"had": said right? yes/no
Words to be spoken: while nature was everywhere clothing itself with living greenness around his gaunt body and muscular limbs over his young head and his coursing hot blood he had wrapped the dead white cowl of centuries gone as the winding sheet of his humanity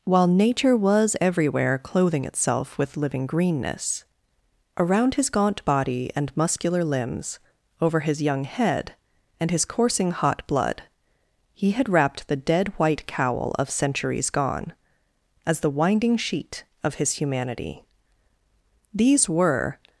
yes